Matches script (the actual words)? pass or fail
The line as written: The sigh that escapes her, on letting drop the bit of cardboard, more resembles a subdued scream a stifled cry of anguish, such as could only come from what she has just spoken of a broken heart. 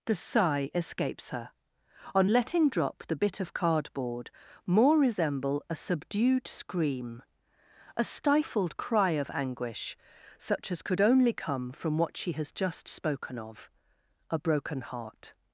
fail